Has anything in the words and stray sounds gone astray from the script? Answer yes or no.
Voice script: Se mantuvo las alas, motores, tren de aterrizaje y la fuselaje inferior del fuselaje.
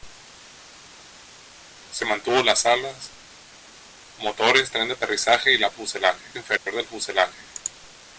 yes